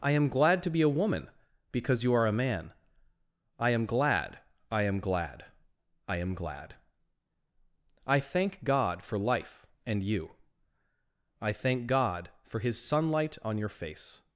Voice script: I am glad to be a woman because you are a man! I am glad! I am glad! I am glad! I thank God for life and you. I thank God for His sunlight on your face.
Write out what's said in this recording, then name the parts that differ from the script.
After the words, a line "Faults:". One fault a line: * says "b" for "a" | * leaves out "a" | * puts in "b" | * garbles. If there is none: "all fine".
I am glad to be a woman because you are a man! I am glad! I am glad! I am glad! I thank God for life and you. I thank God for His sunlight on your face.
Faults:
all fine